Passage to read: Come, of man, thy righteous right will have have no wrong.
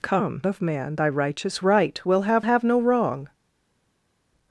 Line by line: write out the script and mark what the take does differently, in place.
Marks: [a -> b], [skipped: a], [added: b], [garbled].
Come, of man, thy righteous right will have have no wrong.